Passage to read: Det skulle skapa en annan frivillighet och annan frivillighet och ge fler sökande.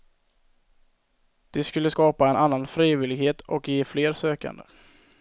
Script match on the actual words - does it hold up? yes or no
no